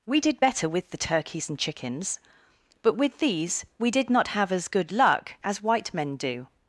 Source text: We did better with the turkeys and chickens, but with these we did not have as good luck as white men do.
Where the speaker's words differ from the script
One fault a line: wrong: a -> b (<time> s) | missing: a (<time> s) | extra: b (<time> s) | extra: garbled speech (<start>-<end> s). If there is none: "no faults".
no faults